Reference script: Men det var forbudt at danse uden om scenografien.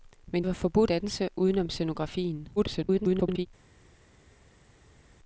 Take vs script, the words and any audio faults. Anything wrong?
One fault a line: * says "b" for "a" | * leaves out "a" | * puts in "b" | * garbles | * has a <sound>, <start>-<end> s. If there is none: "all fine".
* leaves out "det"
* leaves out "at"
* garbles